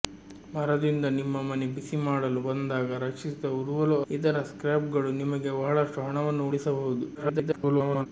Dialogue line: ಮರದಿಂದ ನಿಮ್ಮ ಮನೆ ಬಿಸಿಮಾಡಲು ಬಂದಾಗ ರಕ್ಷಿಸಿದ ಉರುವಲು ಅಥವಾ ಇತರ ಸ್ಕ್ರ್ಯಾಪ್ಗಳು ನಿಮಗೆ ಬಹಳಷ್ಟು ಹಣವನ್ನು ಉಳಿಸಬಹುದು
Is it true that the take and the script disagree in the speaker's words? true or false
true